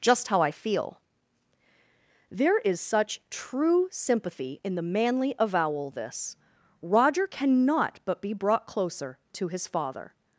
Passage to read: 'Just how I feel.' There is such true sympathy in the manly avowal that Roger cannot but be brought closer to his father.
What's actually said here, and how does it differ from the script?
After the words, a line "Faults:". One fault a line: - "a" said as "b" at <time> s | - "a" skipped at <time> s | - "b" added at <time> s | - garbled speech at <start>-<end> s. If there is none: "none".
'Just how I feel.' There is such true sympathy in the manly avowal this Roger cannot but be brought closer to his father.
Faults:
- "that" said as "this" at 5.9 s